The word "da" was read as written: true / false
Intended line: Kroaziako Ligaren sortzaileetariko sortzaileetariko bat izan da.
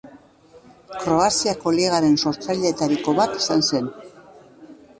false